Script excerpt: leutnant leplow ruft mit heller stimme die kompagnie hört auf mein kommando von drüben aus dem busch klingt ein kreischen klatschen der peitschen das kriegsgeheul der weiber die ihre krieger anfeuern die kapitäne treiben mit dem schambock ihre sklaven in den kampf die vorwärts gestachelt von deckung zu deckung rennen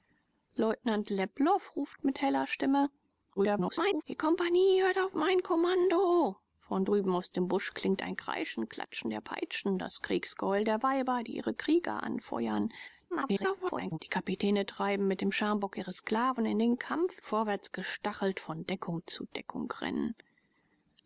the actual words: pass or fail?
fail